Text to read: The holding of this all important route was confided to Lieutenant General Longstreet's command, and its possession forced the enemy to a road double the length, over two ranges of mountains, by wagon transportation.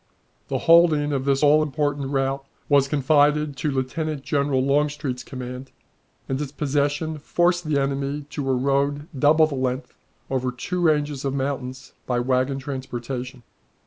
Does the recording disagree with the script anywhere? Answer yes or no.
no